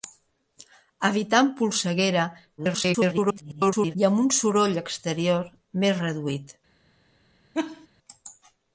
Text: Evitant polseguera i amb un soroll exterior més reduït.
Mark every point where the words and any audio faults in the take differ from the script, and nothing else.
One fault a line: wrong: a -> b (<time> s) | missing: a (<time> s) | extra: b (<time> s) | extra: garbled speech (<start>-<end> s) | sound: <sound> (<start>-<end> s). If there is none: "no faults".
extra: garbled speech (2.6-4.0 s)
sound: laugh (7.5-7.9 s)